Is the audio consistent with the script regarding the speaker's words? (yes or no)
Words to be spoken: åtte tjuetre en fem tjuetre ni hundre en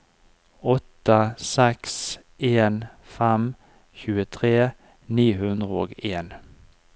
no